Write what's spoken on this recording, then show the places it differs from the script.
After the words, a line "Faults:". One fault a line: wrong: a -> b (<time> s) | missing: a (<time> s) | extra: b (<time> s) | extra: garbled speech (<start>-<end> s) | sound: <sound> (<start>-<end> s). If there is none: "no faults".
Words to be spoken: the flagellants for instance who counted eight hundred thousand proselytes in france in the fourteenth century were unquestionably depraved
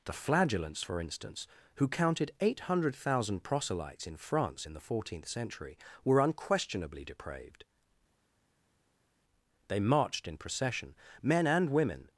the flagellants for instance who counted eight hundred thousand proselytes in france in the fourteenth century were unquestionably depraved they marched in procession men and women
Faults:
extra: they marched in procession men and women (9.7 s)